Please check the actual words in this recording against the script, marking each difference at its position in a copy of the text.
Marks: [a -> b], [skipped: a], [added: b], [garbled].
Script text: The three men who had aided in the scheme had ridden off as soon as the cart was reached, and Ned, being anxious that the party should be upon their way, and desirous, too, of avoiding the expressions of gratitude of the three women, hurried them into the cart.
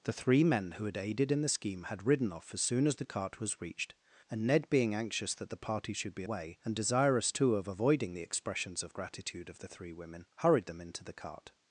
The three men who had aided in the scheme had ridden off as soon as the cart was reached, and Ned, being anxious that the party should be [skipped: upon their] way, and desirous, too, of avoiding the expressions of gratitude of the three women, hurried them into the cart.